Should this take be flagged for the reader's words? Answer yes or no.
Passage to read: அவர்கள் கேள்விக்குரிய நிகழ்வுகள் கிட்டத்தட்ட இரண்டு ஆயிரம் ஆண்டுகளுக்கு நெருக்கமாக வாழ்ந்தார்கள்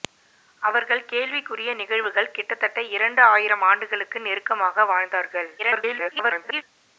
yes